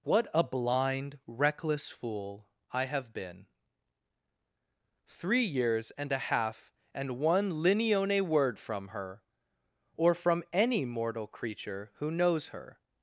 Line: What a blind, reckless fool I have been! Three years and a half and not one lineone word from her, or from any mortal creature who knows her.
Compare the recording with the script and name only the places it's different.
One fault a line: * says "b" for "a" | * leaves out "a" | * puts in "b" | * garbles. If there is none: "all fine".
* leaves out "not"